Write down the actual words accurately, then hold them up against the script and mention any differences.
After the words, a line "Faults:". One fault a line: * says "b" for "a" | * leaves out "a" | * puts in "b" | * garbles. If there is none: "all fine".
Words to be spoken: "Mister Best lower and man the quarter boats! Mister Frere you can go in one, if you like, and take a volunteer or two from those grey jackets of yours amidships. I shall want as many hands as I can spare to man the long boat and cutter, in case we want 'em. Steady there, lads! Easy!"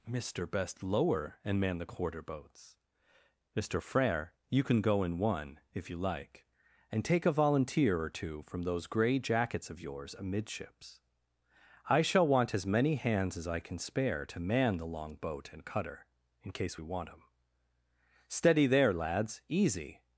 "Mister Best lower and man the quarter boats! Mister Frere you can go in one, if you like, and take a volunteer or two from those grey jackets of yours amidships. I shall want as many hands as I can spare to man the long boat and cutter, in case we want 'em. Steady there, lads! Easy!"
Faults:
all fine